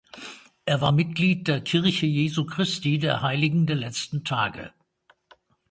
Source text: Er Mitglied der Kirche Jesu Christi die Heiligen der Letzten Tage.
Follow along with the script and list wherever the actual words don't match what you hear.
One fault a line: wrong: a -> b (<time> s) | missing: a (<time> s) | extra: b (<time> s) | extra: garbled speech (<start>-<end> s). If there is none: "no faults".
extra: war (0.8 s)
wrong: die -> der (3.0 s)